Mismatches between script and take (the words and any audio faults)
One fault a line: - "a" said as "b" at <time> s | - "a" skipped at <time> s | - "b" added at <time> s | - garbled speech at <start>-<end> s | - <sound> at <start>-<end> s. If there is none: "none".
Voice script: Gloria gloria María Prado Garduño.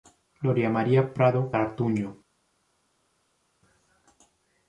- "gloria" skipped at 0.7 s